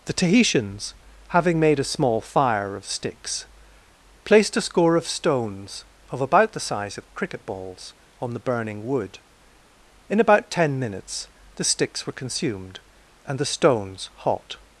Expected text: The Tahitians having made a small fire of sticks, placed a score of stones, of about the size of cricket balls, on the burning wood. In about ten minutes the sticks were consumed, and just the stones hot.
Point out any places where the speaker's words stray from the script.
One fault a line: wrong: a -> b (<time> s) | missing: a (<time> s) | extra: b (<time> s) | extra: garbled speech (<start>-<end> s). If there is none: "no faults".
missing: just (13.4 s)